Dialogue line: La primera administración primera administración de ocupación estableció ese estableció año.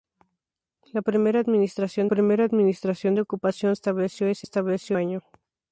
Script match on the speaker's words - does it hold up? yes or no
yes